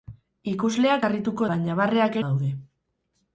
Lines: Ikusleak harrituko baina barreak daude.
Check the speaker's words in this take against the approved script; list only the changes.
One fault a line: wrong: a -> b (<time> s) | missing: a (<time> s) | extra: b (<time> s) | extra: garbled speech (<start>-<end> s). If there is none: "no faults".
no faults